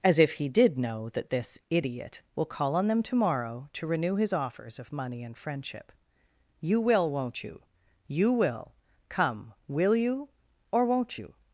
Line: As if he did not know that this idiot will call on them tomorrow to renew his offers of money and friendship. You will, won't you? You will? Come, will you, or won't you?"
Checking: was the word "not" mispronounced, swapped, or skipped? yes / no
yes